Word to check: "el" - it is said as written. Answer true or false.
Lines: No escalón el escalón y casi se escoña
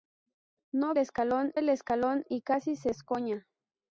true